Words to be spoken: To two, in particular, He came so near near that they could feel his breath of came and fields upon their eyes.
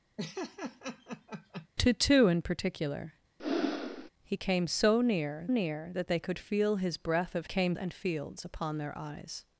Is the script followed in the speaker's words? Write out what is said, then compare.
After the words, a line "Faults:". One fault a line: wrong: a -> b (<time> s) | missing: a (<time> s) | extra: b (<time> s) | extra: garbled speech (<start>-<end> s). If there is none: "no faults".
To two, in particular, He came so near near that they could feel his breath of came and fields upon their eyes.
Faults:
no faults